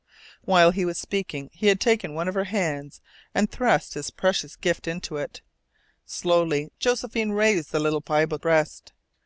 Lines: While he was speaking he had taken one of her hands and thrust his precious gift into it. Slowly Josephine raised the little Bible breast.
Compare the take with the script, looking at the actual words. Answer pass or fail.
pass